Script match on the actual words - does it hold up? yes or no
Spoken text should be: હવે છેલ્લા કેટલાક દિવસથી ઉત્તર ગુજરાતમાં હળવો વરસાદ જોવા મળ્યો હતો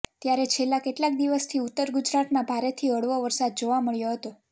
no